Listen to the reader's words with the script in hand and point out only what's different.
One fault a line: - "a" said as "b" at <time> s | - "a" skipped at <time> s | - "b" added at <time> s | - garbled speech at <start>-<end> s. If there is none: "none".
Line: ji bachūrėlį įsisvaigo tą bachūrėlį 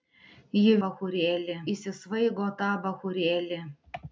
none